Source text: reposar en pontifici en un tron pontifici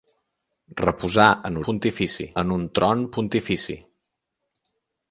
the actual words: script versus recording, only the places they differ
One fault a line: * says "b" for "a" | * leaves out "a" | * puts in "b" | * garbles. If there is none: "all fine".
all fine